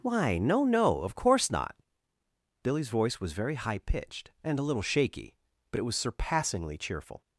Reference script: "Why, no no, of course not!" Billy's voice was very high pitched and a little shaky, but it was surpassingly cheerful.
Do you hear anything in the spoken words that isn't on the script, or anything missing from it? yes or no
no